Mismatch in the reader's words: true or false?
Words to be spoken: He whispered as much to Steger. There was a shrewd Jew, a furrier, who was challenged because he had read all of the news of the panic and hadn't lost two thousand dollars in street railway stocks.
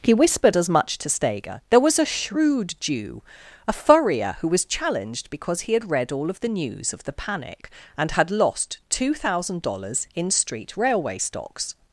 true